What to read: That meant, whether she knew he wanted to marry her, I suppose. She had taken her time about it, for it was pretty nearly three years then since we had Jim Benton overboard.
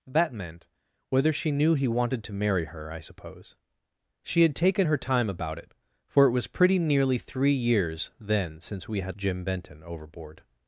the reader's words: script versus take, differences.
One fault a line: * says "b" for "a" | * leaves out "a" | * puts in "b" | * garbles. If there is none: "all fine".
all fine